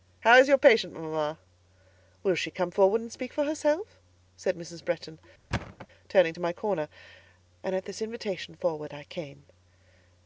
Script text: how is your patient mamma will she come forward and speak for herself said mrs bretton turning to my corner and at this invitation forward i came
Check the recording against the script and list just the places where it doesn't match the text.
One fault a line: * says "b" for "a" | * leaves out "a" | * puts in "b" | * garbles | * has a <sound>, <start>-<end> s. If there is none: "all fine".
* has a thud, 5.5-5.9 s